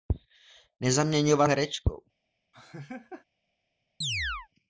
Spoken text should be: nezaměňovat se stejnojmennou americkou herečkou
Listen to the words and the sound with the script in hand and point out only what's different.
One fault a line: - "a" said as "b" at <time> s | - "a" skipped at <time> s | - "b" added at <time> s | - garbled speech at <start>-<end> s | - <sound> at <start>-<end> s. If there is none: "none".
- "se stejnojmennou americkou" skipped at 1.5 s
- laugh at 2.5-3.3 s
- chirp at 4.0-4.5 s